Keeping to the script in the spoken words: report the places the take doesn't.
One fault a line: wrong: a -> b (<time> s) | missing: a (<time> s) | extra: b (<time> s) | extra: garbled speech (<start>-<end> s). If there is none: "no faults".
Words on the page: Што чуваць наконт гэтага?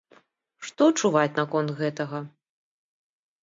no faults